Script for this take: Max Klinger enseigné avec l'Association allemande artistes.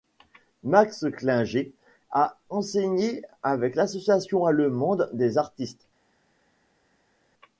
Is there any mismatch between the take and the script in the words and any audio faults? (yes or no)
yes